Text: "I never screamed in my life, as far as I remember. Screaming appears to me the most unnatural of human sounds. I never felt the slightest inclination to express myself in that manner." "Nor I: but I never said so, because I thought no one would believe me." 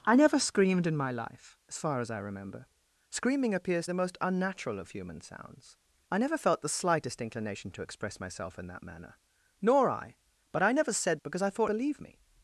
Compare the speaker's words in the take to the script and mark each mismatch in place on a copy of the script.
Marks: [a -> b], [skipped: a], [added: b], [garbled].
"I never screamed in my life, as far as I remember. Screaming appears [skipped: to me] the most unnatural of human sounds. I never felt the slightest inclination to express myself in that manner." "Nor I: but I never said [skipped: so,] because I thought [skipped: no one would] believe me."